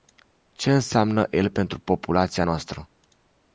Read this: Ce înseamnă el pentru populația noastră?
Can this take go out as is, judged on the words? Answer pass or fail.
pass